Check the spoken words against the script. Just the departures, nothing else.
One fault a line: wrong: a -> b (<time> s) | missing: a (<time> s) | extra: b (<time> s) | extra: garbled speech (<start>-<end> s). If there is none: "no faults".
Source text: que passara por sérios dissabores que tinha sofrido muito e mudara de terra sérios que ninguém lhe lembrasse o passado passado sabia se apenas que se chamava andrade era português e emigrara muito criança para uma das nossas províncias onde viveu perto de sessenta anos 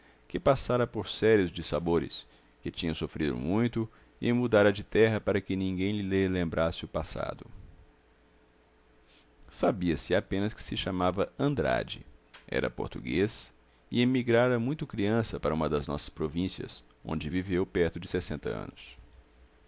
wrong: sérios -> para (5.2 s)
missing: passado (7.5 s)